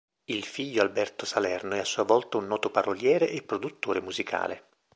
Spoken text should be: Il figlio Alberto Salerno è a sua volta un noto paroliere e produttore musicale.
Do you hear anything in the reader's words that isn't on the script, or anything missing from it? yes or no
no